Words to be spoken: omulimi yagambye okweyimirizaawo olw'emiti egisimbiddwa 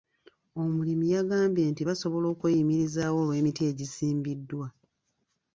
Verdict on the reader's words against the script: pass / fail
fail